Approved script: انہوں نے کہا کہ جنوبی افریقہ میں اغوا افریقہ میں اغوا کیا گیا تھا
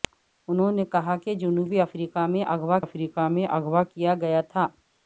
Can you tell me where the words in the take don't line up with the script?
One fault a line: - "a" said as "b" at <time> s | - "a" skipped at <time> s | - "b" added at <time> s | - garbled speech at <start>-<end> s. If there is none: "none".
none